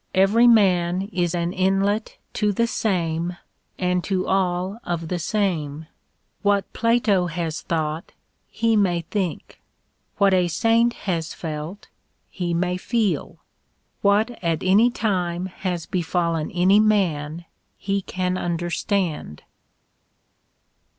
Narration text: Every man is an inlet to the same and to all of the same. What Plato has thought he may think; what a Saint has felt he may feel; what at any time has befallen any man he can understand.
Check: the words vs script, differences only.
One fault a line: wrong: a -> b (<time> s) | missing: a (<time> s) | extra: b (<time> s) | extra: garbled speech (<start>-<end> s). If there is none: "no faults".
no faults